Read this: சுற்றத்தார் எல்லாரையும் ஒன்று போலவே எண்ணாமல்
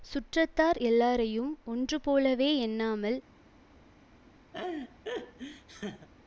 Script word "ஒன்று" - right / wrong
right